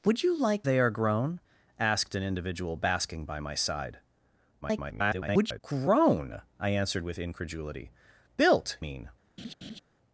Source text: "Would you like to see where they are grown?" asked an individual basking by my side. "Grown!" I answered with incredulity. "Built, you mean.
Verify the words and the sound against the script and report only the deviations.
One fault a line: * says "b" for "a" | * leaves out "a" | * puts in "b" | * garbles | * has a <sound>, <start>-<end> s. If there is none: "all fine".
* leaves out "to see where"
* garbles
* leaves out "you"
* has a laugh, 9.4-9.8 s